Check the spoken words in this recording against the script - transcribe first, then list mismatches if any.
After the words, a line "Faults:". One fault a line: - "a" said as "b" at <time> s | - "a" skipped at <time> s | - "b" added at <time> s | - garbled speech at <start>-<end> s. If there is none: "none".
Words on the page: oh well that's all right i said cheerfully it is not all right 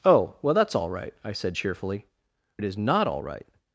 oh well that's all right i said cheerfully it is not all right
Faults:
none